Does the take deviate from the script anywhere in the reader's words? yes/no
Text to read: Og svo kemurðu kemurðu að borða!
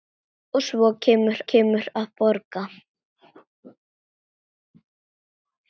no